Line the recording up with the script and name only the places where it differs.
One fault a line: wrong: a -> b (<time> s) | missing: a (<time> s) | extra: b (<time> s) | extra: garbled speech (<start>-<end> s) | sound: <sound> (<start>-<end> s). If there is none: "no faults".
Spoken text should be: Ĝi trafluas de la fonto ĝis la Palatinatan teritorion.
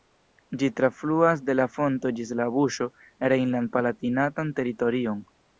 extra: buŝo rejnland (2.6 s)